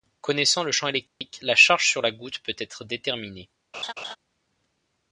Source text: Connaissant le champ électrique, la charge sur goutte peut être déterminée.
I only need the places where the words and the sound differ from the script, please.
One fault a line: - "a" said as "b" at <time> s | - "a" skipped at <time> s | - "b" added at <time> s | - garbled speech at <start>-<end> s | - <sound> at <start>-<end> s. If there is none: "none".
- dropout at 1.1-1.2 s
- "la" added at 2.0 s
- laugh at 3.7-4.2 s